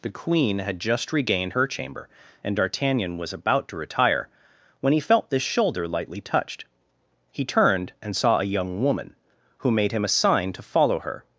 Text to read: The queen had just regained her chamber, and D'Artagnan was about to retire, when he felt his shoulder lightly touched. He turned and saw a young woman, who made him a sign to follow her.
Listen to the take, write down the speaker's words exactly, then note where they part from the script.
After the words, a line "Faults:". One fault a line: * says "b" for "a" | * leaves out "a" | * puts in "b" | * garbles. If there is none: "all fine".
The queen had just regained her chamber, and D'Artagnan was about to retire, when he felt this shoulder lightly touched. He turned and saw a young woman, who made him a sign to follow her.
Faults:
* says "this" for "his"